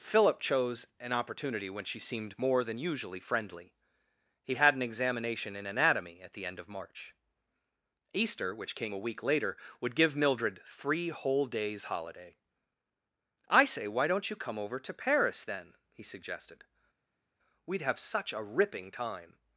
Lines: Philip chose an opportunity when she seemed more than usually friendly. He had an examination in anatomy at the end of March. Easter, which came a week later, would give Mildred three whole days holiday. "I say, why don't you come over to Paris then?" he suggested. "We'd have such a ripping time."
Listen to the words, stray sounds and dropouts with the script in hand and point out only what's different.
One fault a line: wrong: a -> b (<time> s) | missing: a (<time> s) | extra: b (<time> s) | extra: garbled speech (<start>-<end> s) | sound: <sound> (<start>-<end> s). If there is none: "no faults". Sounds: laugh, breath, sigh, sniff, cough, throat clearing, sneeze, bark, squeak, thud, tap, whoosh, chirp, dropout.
no faults